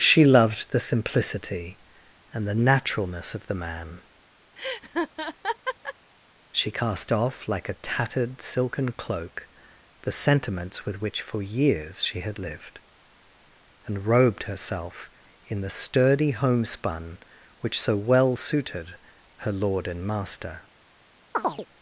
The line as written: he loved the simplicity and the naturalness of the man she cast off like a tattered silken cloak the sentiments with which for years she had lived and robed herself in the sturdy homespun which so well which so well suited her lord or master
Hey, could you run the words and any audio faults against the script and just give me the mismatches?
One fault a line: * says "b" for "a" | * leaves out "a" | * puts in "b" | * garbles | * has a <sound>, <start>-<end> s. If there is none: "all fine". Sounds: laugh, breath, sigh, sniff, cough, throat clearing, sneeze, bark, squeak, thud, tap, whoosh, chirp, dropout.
* says "she" for "he"
* has a laugh, 4.6-5.9 s
* leaves out "which so well"
* says "and" for "or"
* has a chirp, 21.3-21.7 s